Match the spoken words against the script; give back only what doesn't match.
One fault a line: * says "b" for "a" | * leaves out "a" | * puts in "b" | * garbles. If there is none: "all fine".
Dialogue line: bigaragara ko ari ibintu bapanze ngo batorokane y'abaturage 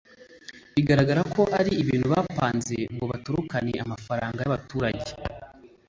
* puts in "amafaranga"